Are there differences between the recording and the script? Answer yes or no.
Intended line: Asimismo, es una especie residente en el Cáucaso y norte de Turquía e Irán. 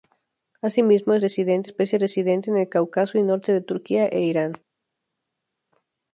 yes